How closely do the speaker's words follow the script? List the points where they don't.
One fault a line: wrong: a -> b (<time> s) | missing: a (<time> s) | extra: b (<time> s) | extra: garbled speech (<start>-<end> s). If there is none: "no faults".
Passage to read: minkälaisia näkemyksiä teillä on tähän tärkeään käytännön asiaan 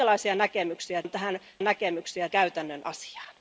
missing: teillä (1.0 s)
wrong: tärkeään -> näkemyksiä (1.6 s)